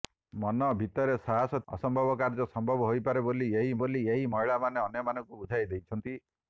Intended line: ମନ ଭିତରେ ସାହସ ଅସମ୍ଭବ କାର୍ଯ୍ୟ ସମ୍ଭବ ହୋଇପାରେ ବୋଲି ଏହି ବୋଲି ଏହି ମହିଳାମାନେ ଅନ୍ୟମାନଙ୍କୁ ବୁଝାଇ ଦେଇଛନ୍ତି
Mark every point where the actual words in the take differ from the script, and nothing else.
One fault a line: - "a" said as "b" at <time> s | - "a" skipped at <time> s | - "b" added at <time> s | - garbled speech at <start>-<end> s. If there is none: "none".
none